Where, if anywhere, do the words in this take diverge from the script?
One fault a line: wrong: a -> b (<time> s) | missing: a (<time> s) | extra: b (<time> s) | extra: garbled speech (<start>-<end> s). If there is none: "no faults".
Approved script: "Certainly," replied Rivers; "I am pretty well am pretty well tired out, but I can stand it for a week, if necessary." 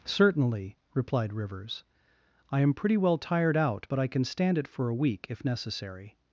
missing: am pretty well (3.2 s)